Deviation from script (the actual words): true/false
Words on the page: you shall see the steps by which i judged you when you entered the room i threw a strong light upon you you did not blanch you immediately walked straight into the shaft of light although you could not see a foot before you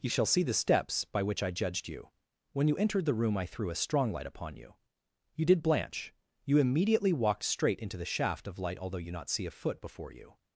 true